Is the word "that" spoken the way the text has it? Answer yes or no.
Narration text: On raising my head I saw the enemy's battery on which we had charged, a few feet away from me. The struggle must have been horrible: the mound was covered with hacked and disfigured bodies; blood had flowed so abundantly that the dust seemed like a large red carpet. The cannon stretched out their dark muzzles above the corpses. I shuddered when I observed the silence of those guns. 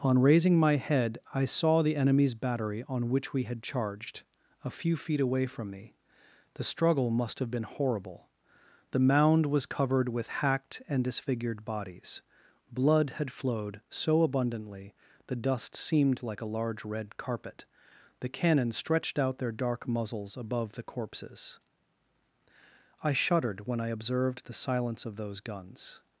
no